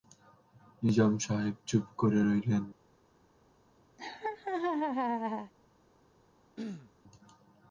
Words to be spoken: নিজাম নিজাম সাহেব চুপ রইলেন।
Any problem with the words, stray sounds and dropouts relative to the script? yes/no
yes